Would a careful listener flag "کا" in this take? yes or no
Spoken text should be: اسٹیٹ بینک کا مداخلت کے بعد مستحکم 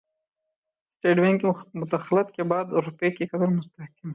yes